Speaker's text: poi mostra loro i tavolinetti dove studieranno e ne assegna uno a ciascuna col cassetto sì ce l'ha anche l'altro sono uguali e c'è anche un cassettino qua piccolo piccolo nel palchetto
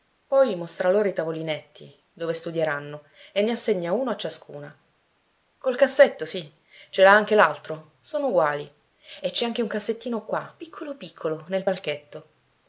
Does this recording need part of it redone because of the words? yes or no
no